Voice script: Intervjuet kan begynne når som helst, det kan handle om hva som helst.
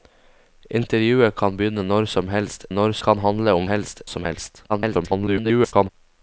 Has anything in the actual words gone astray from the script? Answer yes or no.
yes